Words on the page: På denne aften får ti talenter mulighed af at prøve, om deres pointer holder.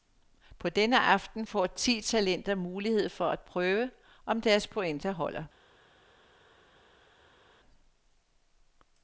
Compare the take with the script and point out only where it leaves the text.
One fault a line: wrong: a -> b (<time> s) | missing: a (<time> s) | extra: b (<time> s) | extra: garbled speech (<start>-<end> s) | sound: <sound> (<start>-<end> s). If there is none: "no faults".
wrong: af -> for (3.1 s)